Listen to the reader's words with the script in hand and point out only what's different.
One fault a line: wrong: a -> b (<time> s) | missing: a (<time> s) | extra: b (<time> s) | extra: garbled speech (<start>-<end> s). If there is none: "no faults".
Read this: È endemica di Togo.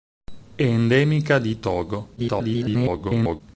extra: garbled speech (2.2-3.4 s)